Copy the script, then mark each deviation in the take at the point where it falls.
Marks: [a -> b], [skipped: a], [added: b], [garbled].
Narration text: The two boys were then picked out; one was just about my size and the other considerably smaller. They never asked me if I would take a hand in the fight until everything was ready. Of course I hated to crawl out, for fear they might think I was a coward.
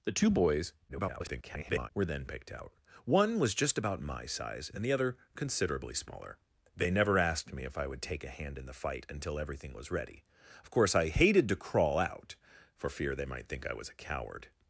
The two boys [garbled] were then picked out; one was just about my size and the other considerably smaller. They never asked me if I would take a hand in the fight until everything was ready. Of course I hated to crawl out, for fear they might think I was a coward.